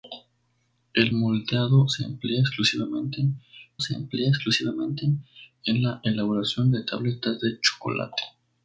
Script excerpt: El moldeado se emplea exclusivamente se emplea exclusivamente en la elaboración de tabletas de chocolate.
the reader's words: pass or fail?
pass